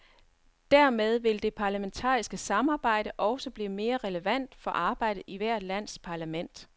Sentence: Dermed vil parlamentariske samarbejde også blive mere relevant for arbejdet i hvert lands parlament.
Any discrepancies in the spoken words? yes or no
yes